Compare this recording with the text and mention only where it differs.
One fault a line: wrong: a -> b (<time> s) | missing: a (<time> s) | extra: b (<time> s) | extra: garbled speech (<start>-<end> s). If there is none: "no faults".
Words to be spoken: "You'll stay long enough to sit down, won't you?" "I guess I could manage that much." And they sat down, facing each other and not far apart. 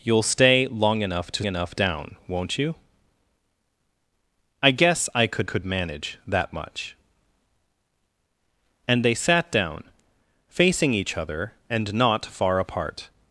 wrong: sit -> enough (1.4 s)
extra: could (5.4 s)